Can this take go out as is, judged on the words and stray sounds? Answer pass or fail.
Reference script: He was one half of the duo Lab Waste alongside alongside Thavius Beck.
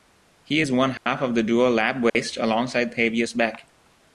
fail